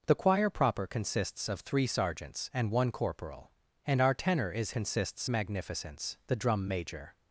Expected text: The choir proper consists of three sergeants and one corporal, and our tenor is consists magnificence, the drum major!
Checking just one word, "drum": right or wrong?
right